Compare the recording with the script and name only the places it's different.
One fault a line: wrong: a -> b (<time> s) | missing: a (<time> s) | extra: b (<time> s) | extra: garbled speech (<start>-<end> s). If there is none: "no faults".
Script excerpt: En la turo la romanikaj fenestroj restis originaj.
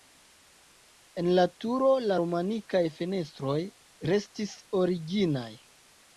no faults